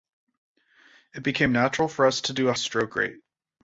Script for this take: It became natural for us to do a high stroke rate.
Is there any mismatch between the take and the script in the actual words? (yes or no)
yes